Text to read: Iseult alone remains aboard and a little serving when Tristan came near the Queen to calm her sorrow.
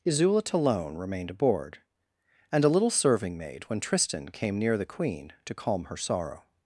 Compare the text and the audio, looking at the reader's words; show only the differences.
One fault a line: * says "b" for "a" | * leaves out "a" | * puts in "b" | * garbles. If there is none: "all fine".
* says "remained" for "remains"
* puts in "maid"